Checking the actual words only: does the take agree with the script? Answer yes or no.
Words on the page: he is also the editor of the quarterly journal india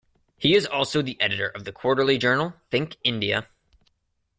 no